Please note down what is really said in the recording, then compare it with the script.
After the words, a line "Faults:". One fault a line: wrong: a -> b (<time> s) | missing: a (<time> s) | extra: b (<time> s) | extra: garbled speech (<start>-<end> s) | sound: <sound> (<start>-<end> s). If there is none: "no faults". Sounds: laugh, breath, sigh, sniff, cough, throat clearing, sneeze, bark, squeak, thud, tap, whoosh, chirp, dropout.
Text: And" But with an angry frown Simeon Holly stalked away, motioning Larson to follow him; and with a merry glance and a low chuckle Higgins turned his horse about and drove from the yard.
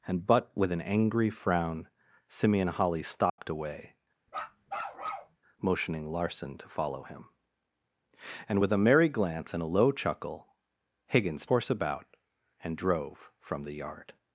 And" But with an angry frown Simeon Holly stalked away, motioning Larson to follow him; and with a merry glance and a low chuckle Higgins horse about and drove from the yard.
Faults:
sound: dropout (3.3-3.4 s)
sound: bark (4.3-5.4 s)
missing: turned his (11.4 s)